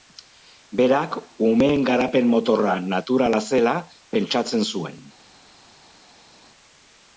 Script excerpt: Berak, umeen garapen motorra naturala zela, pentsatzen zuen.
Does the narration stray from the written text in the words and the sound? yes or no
no